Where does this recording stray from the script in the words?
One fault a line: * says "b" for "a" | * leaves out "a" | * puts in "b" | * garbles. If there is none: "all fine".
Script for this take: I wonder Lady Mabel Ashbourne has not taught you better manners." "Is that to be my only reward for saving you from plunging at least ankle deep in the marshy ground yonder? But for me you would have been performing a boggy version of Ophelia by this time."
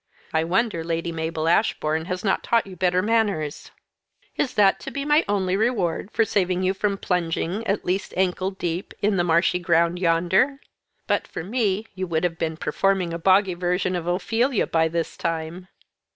all fine